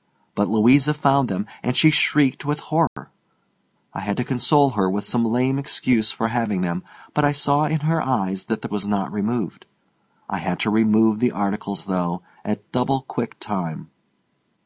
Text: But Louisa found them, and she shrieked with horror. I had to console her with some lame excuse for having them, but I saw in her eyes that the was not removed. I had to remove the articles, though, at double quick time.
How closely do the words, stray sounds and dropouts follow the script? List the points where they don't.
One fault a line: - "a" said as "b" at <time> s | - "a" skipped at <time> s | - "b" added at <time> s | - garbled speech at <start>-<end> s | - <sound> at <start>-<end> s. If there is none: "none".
- dropout at 2.9-3.0 s